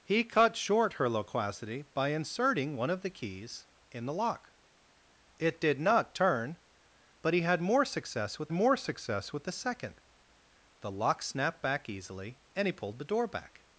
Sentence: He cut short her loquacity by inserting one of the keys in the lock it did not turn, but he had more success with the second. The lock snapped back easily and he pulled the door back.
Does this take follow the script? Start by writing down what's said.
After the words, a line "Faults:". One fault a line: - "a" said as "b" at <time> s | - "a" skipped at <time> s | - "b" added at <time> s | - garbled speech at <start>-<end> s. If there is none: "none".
He cut short her loquacity by inserting one of the keys in the lock it did not turn, but he had more success with more success with the second. The lock snapped back easily and he pulled the door back.
Faults:
- "more success with" added at 8.5 s